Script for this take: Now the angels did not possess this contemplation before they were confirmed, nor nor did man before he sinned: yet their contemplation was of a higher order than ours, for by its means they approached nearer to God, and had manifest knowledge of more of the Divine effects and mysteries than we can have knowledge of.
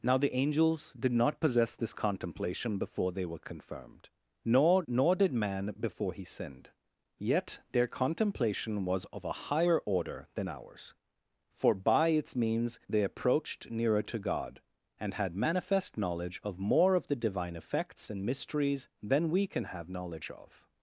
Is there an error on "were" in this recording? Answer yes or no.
no